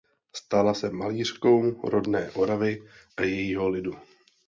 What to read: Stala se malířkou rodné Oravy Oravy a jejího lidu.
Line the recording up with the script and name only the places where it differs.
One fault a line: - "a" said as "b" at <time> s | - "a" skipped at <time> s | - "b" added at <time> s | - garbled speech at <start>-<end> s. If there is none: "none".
- "Oravy" skipped at 2.8 s